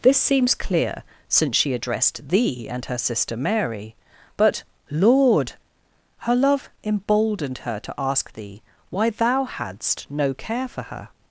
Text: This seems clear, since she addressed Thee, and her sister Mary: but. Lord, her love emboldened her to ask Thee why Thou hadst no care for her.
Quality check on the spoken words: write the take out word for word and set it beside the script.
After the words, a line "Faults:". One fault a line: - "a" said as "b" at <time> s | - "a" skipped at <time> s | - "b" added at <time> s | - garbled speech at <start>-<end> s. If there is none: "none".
This seems clear, since she addressed Thee, and her sister Mary: but. Lord, her love emboldened her to ask Thee why Thou hadst no care for her.
Faults:
none